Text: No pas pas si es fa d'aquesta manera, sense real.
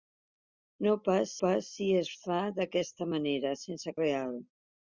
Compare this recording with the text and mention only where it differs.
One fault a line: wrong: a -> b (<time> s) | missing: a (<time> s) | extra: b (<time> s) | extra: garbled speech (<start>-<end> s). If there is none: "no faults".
no faults